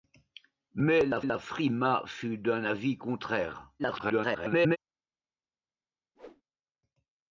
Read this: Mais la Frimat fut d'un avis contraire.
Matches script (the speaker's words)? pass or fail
fail